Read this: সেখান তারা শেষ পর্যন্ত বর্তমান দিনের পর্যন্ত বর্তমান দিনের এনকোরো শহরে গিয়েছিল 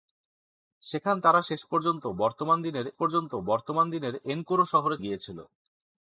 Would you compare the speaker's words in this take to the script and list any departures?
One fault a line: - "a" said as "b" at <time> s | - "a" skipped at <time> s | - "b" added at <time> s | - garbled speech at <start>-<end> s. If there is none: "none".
none